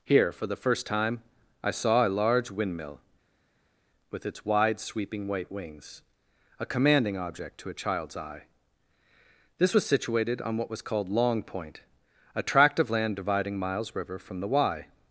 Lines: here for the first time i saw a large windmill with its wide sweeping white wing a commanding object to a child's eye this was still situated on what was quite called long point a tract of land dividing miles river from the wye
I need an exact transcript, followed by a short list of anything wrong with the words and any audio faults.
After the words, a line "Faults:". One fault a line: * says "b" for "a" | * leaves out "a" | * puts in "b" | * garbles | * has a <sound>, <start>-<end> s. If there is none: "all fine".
here for the first time i saw a large windmill with its wide sweeping white wings a commanding object to a child's eye this was situated on what was called long point a tract of land dividing miles river from the wye
Faults:
* says "wings" for "wing"
* leaves out "still"
* leaves out "quite"